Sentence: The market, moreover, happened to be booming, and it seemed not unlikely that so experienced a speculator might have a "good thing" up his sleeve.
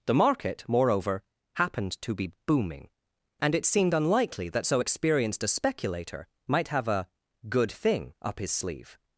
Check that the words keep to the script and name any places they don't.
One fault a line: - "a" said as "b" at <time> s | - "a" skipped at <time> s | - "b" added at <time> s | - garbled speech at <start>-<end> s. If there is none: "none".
- "not" skipped at 3.9 s